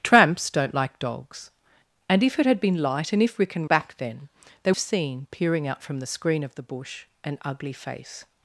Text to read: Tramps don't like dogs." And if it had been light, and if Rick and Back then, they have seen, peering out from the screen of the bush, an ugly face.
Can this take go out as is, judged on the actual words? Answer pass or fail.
pass